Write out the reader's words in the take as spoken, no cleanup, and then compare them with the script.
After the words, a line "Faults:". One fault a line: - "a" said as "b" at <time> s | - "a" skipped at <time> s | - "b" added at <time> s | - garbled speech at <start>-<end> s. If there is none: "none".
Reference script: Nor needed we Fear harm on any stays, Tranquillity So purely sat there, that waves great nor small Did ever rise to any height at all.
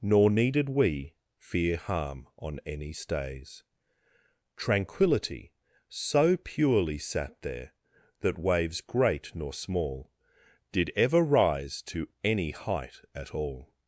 Nor needed we Fear harm on any stays, Tranquillity So purely sat there, that waves great nor small Did ever rise to any height at all.
Faults:
none